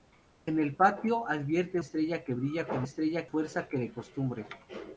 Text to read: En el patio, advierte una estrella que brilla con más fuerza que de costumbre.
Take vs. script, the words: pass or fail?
fail